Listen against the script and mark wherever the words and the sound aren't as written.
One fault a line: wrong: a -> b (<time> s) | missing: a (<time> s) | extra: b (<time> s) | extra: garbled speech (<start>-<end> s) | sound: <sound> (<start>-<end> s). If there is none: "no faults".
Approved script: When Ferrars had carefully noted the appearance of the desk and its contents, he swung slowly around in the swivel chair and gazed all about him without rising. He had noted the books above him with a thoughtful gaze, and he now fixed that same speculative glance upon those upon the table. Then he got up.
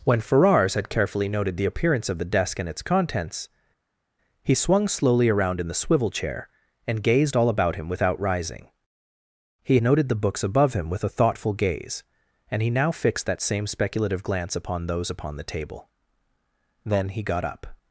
missing: had (9.8 s)